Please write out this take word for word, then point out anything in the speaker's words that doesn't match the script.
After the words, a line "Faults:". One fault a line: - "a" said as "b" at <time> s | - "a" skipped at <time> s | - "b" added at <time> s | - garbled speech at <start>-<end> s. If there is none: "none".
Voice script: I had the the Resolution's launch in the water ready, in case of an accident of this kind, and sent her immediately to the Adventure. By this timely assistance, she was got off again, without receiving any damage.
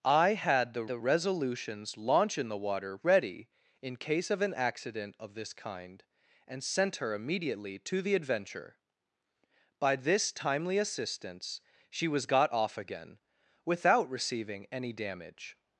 I had the the Resolution's launch in the water ready, in case of an accident of this kind, and sent her immediately to the Adventure. By this timely assistance, she was got off again, without receiving any damage.
Faults:
none